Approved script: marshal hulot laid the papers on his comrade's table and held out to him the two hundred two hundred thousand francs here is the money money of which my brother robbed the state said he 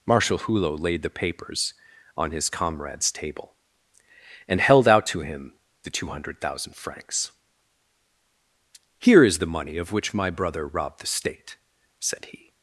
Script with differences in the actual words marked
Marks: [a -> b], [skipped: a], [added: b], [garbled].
marshal hulot laid the papers on his comrade's table and held out to him the two hundred [skipped: two hundred] thousand francs here is the money [skipped: money] of which my brother robbed the state said he